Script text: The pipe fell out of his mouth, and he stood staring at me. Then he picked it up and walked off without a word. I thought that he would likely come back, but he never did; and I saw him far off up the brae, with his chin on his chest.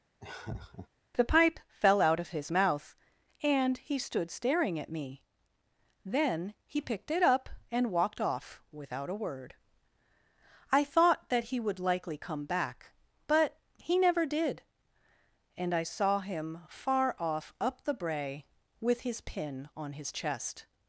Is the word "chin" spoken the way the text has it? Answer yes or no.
no